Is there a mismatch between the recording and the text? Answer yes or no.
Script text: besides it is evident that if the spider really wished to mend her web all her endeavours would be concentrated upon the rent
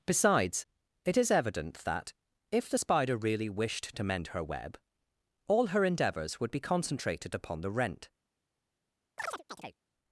no